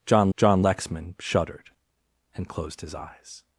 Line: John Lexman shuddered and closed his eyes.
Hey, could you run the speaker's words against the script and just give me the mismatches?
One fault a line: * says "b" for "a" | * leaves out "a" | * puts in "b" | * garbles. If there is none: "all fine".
* puts in "john"